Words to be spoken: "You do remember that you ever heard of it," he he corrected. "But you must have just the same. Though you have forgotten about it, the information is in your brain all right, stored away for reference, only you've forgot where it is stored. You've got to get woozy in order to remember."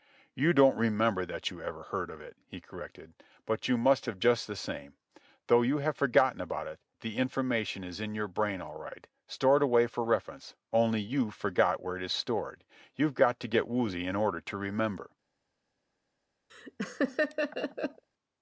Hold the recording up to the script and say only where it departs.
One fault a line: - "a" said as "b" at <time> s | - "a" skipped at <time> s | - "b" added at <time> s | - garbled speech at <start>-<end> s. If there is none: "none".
- "do" said as "don't" at 0.5 s
- "he" skipped at 2.6 s